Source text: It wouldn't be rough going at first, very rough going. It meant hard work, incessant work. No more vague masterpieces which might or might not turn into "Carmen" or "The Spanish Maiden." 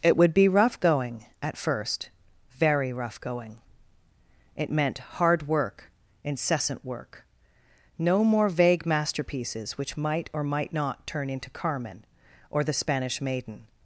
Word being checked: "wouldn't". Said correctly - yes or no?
no